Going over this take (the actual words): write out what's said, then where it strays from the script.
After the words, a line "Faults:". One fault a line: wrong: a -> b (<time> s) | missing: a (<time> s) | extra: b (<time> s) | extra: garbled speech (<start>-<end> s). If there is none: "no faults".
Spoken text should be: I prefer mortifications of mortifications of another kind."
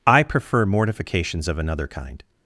I prefer mortifications of another kind."
Faults:
missing: mortifications of (1.6 s)